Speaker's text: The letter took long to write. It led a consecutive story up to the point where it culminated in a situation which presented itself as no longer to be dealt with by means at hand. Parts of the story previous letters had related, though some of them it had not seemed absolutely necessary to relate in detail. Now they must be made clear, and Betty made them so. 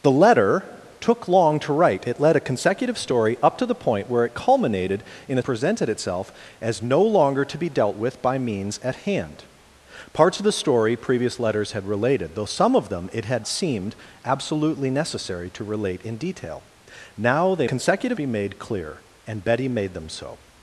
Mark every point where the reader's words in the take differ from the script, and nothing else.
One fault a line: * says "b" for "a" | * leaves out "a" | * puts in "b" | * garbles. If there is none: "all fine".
* leaves out "situation which"
* leaves out "not"
* says "consecutive" for "must"